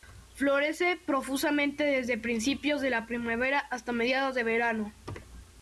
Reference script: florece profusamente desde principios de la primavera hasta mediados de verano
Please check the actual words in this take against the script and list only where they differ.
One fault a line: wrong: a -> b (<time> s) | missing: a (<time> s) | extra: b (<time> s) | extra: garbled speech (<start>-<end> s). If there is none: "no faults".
no faults